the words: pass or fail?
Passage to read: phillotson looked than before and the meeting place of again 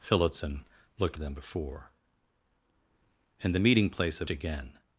pass